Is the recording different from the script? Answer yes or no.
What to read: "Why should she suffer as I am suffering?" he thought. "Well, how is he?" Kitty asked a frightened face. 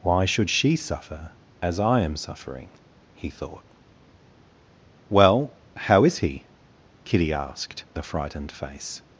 no